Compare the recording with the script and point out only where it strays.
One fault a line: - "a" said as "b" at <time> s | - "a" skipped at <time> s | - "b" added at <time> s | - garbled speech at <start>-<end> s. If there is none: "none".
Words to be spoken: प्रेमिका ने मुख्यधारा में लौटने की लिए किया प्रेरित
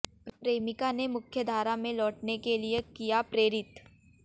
- "की" said as "के" at 2.4 s